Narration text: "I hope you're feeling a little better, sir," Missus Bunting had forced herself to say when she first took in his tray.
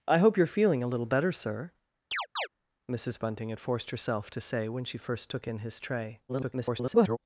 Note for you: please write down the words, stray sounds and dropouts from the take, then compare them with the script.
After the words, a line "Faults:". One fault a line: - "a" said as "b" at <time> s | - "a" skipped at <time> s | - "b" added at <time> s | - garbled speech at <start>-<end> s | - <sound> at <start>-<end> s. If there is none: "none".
"I hope you're feeling a little better, sir," Missus Bunting had forced herself to say when she first took in his tray. [garbled]
Faults:
- chirp at 2.1-2.5 s
- garbled speech at 6.3-7.2 s